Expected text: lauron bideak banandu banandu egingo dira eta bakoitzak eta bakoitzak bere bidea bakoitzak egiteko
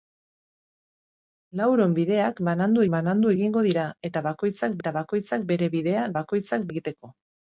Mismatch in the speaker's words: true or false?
false